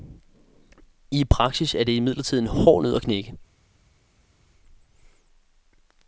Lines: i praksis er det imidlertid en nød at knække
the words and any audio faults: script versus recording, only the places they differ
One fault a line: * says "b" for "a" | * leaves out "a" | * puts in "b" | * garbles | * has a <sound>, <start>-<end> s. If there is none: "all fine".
* puts in "hård"